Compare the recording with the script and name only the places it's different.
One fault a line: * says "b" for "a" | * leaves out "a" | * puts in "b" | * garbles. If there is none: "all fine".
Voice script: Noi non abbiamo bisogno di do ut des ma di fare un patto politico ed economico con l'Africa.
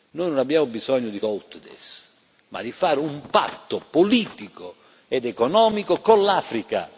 all fine